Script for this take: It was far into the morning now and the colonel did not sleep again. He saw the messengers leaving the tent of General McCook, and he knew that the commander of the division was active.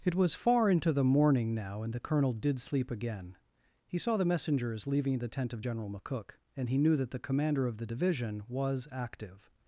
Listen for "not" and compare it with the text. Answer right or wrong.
wrong